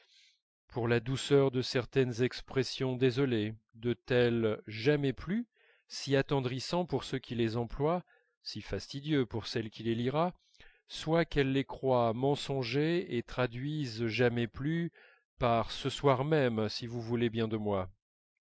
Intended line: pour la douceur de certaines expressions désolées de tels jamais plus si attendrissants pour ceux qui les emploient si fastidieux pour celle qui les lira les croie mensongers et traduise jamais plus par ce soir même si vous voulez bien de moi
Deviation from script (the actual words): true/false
true